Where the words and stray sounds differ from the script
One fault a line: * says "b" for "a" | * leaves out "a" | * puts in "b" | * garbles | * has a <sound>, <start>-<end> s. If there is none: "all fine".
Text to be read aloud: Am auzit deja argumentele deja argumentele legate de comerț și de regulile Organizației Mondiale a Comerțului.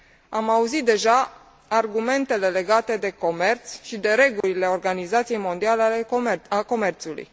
* leaves out "deja argumentele"
* has a dropout, 4.4-4.4 s